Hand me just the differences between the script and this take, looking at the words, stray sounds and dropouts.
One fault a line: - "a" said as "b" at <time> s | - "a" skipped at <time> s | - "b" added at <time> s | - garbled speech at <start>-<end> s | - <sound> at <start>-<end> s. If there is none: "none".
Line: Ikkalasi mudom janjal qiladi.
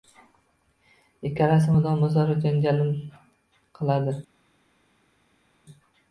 - "o‘zaro" added at 2.1 s